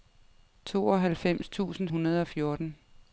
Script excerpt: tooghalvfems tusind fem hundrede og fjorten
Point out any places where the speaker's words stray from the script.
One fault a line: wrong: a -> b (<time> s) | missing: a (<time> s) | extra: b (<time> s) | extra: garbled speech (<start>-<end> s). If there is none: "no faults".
missing: fem (1.9 s)